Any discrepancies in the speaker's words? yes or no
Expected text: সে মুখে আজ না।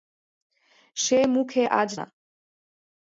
no